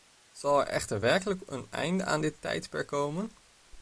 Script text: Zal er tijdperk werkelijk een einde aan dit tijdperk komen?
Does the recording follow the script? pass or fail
fail